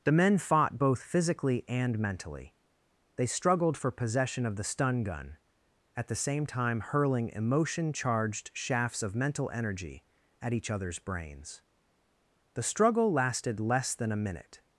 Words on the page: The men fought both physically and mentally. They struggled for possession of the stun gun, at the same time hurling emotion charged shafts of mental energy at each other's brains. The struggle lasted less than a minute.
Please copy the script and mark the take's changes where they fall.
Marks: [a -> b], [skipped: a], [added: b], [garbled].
The men fought both physically and mentally. They struggled for possession of the stun gun, at the same time hurling emotion charged shafts of mental energy at each other's brains. The struggle lasted less than a minute.